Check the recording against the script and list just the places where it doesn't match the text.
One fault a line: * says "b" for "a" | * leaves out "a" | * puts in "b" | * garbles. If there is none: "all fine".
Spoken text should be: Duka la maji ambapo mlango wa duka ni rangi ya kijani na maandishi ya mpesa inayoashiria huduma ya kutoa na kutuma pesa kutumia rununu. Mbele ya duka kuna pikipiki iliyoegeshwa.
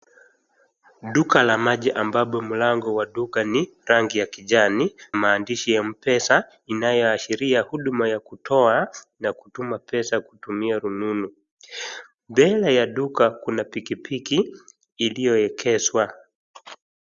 * leaves out "na"